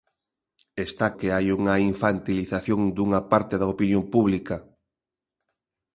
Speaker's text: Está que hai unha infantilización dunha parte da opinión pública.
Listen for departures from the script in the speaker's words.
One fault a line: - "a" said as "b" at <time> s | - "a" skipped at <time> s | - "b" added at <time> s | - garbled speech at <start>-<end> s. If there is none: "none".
none